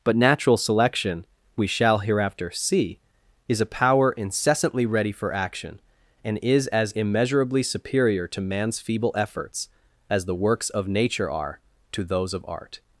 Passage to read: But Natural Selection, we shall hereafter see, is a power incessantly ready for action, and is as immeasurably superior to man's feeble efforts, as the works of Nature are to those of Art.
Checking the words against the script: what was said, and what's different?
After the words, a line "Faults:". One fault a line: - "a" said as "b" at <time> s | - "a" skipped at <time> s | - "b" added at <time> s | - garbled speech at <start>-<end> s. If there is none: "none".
But Natural Selection, we shall hereafter see, is a power incessantly ready for action, and is as immeasurably superior to man's feeble efforts, as the works of Nature are to those of Art.
Faults:
none